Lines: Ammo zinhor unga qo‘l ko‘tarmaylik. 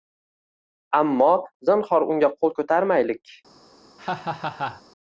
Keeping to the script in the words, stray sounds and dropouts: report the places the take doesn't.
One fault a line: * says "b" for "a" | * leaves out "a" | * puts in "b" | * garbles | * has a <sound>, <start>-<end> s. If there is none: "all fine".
* has a laugh, 4.0-4.8 s